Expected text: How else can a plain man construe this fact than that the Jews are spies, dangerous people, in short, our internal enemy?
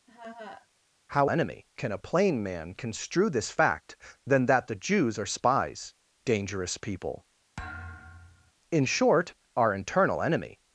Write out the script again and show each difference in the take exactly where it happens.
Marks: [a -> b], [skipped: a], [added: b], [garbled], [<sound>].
[laugh] How [else -> enemy] can a plain man construe this fact than that the Jews are spies, dangerous people, [thud] in short, our internal enemy?